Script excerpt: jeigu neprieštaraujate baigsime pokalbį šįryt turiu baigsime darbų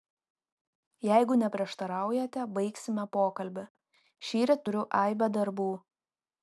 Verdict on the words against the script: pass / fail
fail